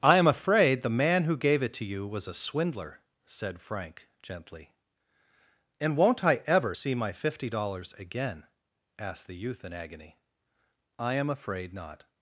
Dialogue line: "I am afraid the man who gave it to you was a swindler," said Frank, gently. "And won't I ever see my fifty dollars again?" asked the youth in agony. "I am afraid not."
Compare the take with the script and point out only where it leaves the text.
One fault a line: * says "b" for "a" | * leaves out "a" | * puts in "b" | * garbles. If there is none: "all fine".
all fine